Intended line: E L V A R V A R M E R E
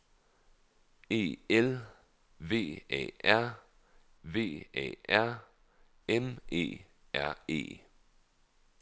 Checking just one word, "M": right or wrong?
right